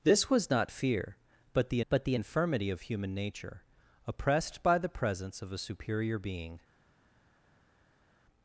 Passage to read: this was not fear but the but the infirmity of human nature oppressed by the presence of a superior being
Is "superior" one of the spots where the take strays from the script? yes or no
no